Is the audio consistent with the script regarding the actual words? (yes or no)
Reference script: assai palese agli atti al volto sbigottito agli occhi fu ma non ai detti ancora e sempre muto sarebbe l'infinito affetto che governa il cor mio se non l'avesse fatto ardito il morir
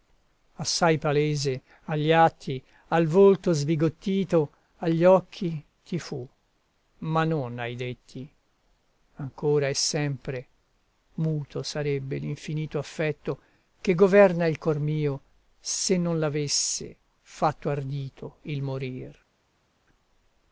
no